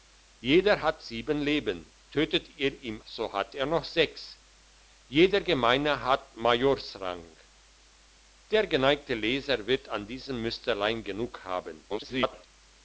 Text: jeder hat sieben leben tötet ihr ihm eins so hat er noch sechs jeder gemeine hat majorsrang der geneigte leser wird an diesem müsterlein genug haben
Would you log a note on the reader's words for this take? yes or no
yes